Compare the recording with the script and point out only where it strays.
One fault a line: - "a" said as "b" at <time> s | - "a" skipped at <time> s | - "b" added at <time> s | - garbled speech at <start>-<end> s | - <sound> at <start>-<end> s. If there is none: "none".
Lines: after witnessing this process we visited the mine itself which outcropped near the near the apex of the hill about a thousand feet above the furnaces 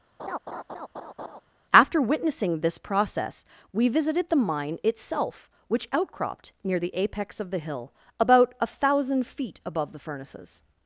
- laugh at 0.2-1.4 s
- "near the" skipped at 6.9 s